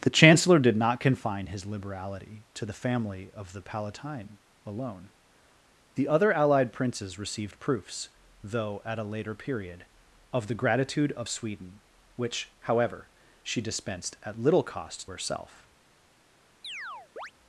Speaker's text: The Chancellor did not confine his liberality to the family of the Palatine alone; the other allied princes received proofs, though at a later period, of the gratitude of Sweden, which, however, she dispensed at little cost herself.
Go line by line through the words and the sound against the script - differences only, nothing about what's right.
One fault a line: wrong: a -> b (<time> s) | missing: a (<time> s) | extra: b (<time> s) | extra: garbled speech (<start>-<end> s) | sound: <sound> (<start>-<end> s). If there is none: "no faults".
sound: chirp (16.6-17.3 s)